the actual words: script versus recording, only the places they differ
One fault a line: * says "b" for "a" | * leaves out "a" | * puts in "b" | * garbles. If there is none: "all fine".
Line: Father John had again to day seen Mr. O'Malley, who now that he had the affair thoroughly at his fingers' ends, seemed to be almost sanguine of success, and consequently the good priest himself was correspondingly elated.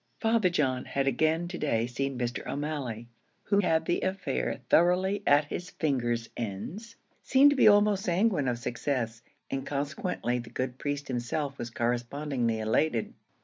* leaves out "now that he"